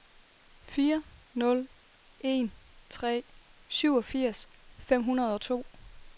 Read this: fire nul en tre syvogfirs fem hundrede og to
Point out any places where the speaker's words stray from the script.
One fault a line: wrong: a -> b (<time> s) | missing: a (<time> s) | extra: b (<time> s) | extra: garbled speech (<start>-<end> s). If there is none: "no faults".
no faults